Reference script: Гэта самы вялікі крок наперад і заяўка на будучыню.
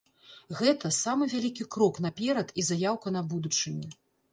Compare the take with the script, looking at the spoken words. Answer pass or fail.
pass